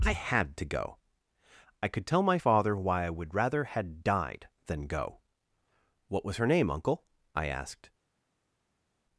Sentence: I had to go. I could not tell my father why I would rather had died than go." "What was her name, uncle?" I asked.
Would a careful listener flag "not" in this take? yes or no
yes